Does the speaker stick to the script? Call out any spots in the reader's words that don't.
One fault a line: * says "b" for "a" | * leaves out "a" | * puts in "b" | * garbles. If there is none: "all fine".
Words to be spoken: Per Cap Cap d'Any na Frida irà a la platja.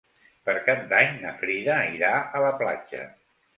* leaves out "Cap"